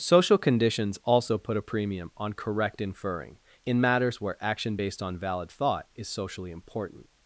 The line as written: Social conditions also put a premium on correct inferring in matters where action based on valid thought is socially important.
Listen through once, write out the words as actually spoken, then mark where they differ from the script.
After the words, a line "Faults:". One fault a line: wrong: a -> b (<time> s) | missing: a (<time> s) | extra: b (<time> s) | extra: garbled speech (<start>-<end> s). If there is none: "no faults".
Social conditions also put a premium on correct inferring in matters where action based on valid thought is socially important.
Faults:
no faults